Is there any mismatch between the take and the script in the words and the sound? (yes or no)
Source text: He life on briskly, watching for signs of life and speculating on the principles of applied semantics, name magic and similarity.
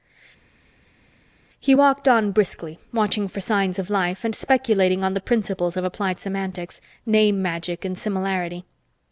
yes